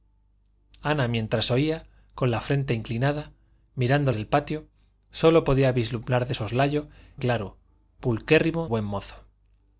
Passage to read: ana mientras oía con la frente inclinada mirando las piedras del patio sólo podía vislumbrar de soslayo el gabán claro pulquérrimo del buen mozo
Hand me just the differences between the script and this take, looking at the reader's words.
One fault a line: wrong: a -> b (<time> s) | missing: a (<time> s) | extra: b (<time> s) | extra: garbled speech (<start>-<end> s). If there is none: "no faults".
missing: las piedras (4.1 s)
missing: el gabán (6.9 s)
missing: del (8.7 s)